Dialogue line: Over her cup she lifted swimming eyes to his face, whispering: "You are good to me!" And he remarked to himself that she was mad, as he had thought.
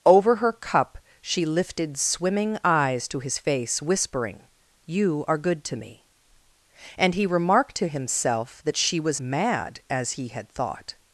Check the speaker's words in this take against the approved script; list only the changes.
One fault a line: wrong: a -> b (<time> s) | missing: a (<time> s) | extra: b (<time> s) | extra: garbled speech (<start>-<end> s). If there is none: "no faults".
no faults